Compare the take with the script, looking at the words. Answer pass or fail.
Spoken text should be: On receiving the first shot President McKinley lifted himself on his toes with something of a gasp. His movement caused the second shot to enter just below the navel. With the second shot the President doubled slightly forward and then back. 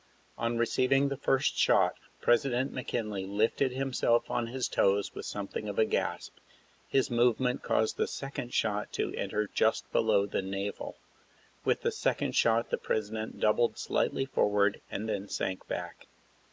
fail